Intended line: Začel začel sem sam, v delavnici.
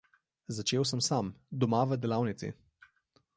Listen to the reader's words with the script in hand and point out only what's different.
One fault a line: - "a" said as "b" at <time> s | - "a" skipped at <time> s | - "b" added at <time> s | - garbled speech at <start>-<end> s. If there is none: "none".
- "začel" skipped at 0.8 s
- "doma" added at 1.5 s